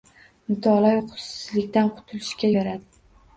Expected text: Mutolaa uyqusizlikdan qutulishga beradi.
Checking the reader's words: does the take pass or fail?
pass